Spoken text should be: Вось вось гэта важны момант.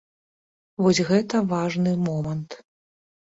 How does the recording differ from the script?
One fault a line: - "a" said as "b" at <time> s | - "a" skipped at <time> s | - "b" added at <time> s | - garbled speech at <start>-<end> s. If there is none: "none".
- "вось" skipped at 1.0 s